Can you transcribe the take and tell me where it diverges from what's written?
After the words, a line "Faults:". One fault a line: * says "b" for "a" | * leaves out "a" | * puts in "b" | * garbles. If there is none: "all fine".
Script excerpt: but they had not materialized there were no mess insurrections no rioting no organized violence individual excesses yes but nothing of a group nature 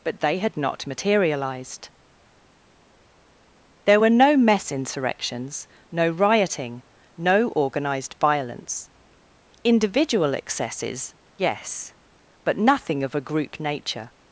but they had not materialized there were no mess insurrections no rioting no organized violence individual excesses yes but nothing of a group nature
Faults:
all fine